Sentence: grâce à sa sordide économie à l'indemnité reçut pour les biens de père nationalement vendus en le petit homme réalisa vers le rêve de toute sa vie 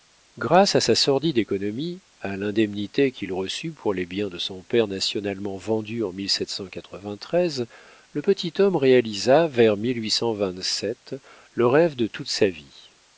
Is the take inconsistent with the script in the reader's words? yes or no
yes